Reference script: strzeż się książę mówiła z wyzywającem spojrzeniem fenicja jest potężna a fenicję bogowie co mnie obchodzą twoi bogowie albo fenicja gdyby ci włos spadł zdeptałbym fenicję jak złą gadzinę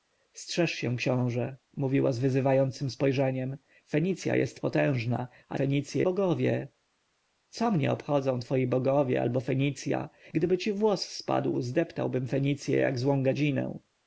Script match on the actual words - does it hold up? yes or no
yes